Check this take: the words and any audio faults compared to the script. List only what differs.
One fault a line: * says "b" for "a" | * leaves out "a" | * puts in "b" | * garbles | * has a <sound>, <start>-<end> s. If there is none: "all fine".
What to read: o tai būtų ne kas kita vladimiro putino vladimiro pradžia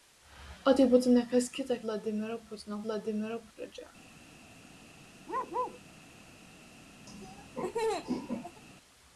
* has a bark, 5.3-5.8 s
* has a laugh, 7.1-8.6 s